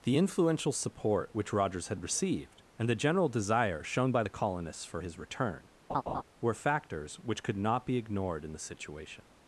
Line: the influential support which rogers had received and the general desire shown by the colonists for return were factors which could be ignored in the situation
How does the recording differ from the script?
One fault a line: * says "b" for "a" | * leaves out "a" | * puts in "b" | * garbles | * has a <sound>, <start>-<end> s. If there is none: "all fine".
* puts in "his"
* has a laugh, 5.9-6.2 s
* puts in "not"